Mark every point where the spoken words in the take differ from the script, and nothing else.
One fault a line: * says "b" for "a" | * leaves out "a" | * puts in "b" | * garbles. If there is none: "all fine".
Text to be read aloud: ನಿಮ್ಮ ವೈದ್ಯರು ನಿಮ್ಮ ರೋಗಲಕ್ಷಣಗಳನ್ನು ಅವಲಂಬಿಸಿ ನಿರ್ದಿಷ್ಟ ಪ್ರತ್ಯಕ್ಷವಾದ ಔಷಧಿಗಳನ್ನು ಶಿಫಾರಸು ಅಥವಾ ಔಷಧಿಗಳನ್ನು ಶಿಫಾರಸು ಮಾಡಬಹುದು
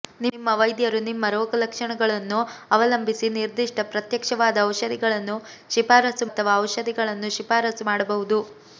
all fine